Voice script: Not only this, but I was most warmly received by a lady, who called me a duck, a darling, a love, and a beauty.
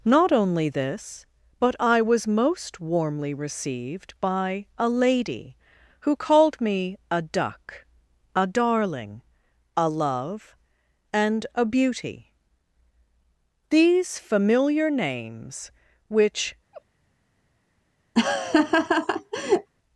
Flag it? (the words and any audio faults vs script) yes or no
yes